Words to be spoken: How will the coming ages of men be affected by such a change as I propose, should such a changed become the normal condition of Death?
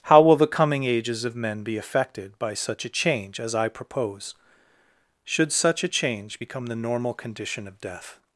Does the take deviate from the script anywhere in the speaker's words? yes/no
yes